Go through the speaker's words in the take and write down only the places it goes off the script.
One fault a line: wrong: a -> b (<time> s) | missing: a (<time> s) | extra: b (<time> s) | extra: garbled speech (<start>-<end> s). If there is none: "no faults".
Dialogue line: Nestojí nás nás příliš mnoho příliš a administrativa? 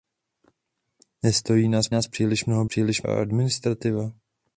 no faults